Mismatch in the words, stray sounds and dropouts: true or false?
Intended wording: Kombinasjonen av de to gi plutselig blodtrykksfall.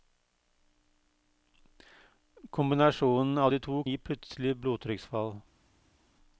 false